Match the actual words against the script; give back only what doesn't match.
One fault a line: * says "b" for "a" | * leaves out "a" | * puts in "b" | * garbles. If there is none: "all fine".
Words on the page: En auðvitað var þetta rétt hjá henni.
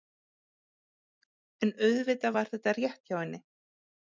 all fine